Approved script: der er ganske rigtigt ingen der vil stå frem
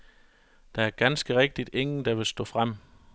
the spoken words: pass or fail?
pass